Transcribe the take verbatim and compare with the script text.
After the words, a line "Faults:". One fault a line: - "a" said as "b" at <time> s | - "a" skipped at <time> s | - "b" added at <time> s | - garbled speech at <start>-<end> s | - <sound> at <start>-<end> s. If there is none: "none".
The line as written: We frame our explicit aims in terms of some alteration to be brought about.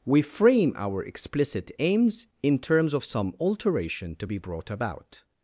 We frame our explicit aims in terms of some alteration to be brought about.
Faults:
none